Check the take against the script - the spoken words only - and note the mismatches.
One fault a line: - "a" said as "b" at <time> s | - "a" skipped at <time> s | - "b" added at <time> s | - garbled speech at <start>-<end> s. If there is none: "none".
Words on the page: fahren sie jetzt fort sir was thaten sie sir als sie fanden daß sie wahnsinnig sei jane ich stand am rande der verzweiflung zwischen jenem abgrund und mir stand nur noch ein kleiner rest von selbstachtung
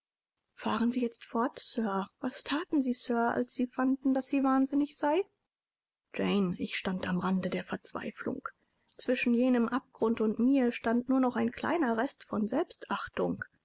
none